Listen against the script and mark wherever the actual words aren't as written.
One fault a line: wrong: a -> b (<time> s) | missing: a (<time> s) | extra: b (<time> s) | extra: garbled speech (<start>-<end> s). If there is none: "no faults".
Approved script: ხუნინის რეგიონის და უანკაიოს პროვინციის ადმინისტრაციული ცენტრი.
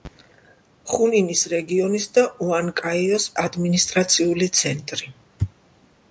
missing: პროვინციის (3.3 s)